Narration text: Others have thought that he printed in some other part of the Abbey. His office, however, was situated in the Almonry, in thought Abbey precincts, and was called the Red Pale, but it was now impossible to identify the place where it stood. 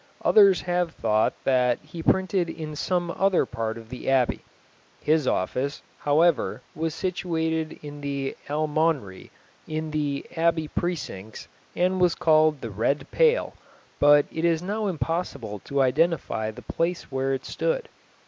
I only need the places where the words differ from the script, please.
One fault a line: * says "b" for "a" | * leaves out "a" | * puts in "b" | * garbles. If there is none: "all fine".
* says "the" for "thought"
* says "is" for "was"